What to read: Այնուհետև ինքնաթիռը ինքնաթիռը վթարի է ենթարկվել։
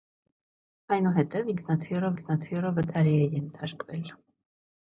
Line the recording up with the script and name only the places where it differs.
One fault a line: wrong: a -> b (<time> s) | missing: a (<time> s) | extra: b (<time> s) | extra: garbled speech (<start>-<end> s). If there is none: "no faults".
no faults